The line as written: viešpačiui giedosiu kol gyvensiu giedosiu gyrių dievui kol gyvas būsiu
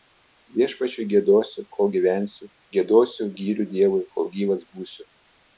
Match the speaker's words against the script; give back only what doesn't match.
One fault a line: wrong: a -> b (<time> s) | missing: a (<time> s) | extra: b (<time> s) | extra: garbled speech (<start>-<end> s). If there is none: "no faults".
no faults